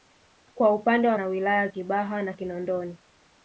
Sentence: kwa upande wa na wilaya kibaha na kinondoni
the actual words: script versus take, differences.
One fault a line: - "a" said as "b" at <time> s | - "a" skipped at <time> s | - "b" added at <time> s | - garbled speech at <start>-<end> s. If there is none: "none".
none